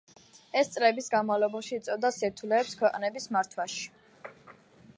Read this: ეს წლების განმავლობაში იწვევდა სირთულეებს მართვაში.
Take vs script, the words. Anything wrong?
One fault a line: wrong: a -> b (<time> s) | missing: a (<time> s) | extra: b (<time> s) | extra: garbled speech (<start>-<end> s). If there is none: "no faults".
extra: ქვეყნების (2.8 s)